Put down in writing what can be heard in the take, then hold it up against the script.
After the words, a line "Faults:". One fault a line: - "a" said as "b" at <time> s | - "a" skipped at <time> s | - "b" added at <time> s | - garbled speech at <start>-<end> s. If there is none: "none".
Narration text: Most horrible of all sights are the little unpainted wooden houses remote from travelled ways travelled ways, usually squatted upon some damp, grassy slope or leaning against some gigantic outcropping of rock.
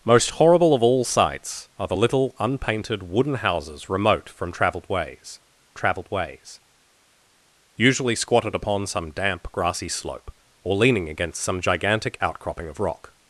Most horrible of all sights are the little unpainted wooden houses remote from travelled ways travelled ways, usually squatted upon some damp, grassy slope or leaning against some gigantic outcropping of rock.
Faults:
none